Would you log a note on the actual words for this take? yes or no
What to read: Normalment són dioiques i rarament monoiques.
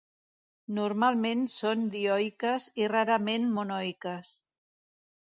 no